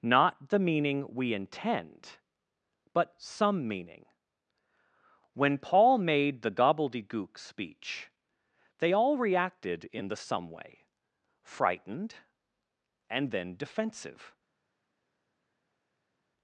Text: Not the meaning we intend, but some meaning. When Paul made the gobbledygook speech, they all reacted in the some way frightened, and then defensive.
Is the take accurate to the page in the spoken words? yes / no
yes